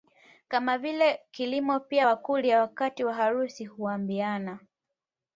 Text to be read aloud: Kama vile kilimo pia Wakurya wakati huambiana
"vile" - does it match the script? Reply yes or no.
yes